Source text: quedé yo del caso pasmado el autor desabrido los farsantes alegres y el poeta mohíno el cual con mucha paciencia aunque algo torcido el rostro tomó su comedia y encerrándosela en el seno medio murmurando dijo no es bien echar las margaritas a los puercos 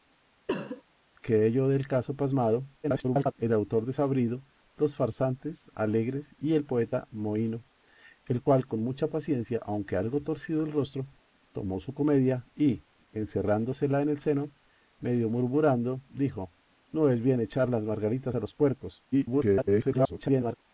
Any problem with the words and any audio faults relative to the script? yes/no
yes